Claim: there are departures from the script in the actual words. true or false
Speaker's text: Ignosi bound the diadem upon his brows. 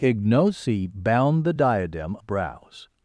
true